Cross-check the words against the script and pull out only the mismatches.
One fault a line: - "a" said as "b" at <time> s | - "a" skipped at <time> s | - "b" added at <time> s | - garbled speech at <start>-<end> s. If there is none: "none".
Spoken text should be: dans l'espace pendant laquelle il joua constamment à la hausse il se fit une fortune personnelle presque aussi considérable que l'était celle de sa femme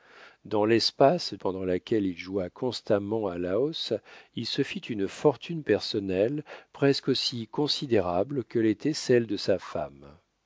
none